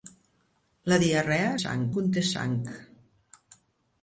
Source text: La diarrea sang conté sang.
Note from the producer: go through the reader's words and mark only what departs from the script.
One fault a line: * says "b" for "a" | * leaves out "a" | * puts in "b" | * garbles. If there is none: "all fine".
all fine